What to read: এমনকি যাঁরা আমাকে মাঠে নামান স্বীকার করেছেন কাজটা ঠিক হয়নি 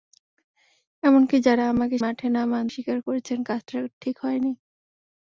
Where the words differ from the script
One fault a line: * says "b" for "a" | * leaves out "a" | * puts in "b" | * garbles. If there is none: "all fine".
all fine